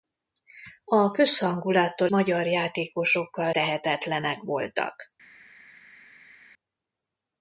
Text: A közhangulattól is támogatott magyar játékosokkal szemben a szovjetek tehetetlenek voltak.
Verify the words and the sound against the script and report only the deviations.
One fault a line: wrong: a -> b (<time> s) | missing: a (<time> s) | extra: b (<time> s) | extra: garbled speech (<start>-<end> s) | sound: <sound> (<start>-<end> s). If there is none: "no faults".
missing: is támogatott (2.1 s)
missing: szemben a szovjetek (3.5 s)